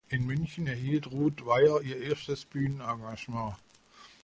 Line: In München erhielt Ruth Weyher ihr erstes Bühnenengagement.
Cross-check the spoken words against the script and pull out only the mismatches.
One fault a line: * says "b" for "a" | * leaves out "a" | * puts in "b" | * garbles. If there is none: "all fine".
all fine